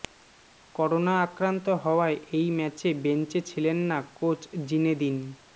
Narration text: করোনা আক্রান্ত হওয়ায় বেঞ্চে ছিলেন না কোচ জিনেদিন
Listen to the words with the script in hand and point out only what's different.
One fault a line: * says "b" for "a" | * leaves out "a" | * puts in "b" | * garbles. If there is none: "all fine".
* puts in "এই ম্যাচে"